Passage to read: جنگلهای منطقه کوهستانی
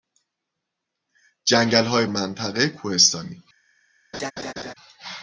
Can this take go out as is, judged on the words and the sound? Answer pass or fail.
fail